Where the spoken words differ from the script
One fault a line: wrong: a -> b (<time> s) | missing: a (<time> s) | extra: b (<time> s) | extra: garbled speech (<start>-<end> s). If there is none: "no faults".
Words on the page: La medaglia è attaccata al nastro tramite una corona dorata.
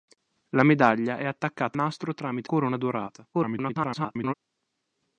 missing: al (1.8 s)
missing: una (2.5 s)
extra: garbled speech (3.3-4.3 s)